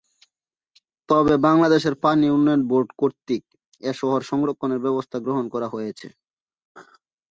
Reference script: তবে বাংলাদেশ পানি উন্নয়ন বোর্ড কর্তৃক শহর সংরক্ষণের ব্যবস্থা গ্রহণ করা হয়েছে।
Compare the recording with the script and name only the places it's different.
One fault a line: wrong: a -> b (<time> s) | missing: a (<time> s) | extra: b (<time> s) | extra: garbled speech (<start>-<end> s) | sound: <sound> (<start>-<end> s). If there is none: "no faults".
extra: এ (3.8 s)